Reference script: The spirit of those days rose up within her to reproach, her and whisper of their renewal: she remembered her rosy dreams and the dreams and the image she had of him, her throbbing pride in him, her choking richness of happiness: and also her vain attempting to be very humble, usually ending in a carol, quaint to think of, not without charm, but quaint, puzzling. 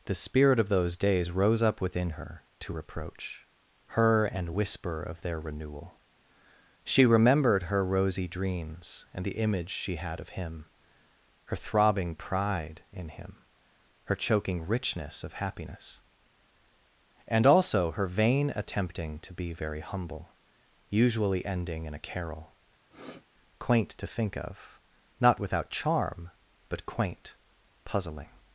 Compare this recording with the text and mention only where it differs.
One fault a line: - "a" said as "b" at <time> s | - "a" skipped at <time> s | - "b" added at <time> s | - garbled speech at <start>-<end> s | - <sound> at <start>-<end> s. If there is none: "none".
- "dreams and the" skipped at 9.4 s
- sniff at 22.9-23.3 s